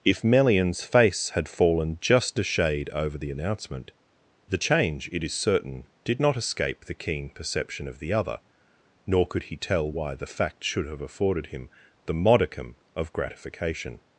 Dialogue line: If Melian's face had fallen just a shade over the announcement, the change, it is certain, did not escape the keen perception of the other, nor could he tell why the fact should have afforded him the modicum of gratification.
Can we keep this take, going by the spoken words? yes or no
yes